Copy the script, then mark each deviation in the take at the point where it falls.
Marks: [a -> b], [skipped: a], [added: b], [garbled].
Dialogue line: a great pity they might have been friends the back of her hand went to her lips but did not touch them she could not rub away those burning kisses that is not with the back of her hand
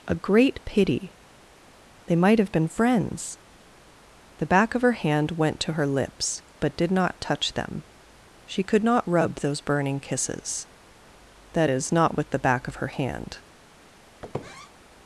a great pity they might have been friends the back of her hand went to her lips but did not touch them she could not rub [skipped: away] those burning kisses that is not with the back of her hand